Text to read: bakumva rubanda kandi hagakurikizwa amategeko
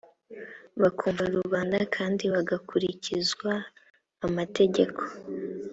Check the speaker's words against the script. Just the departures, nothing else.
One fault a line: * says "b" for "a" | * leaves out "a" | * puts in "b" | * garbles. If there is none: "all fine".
all fine